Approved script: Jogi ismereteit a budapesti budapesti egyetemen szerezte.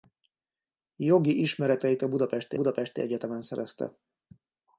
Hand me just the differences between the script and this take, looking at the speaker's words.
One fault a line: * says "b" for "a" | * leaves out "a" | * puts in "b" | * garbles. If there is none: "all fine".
all fine